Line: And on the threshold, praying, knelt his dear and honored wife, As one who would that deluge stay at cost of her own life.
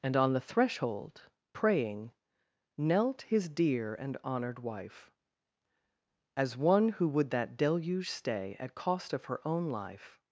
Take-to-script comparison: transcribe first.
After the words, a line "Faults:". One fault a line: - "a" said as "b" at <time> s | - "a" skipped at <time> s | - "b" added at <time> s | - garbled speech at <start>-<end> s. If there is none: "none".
And on the threshold, praying, knelt his dear and honored wife, As one who would that deluge stay at cost of her own life.
Faults:
none